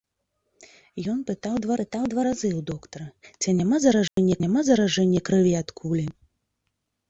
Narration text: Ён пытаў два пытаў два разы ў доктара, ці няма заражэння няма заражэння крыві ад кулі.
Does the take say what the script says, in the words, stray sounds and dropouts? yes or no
no